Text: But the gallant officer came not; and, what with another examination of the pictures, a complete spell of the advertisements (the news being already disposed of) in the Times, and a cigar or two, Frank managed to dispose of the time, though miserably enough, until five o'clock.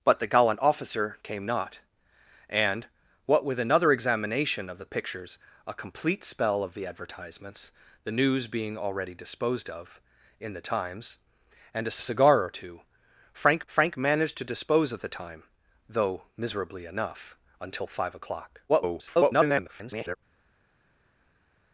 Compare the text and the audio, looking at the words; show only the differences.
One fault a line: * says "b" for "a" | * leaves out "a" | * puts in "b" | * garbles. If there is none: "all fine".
* puts in "a"
* puts in "Frank"
* garbles